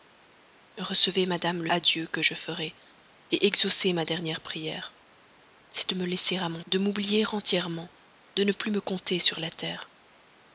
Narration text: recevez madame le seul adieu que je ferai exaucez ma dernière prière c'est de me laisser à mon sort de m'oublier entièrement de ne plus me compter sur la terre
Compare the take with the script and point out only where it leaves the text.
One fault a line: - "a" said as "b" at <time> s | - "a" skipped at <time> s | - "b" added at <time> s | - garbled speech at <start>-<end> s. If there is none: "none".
- "seul" skipped at 1.7 s
- "sort" skipped at 6.6 s